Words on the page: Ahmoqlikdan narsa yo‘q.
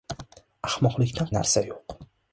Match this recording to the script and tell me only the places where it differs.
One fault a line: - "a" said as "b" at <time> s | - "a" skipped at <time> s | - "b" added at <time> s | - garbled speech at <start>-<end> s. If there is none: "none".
none